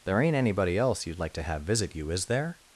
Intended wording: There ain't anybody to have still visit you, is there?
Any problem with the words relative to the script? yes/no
yes